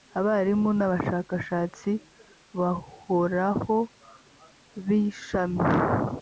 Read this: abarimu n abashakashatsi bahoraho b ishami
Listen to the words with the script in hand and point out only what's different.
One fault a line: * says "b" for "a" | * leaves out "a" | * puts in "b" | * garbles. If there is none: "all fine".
all fine